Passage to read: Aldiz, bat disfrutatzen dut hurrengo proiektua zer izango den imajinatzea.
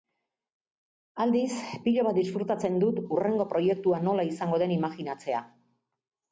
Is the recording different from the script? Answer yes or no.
yes